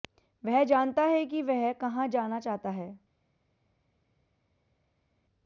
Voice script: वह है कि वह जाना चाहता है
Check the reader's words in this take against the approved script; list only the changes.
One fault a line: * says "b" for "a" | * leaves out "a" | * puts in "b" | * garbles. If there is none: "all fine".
* puts in "जानता"
* puts in "कहां"